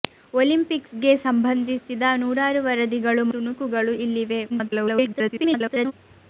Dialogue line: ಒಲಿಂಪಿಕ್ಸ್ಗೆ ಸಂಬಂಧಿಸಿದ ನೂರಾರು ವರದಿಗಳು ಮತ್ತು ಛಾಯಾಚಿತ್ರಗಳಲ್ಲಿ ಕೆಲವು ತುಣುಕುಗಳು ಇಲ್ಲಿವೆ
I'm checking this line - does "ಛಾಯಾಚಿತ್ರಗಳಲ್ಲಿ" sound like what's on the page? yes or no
no